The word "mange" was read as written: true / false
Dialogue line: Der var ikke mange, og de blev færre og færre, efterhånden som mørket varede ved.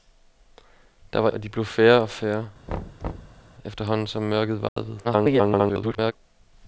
false